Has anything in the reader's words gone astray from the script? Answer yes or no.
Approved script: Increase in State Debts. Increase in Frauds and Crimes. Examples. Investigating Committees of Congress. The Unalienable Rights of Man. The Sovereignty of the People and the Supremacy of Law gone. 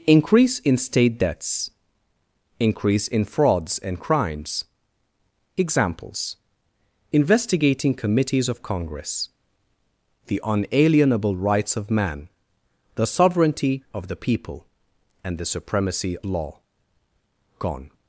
yes